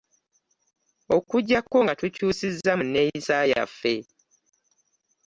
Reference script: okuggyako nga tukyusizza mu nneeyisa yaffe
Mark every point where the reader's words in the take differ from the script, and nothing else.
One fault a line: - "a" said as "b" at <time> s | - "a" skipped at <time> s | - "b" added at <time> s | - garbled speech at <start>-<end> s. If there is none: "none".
none